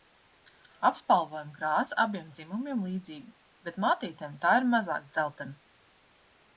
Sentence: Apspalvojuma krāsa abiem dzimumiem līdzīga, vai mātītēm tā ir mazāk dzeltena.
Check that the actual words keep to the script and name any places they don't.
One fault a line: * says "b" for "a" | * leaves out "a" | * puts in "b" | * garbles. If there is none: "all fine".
* says "bet" for "vai"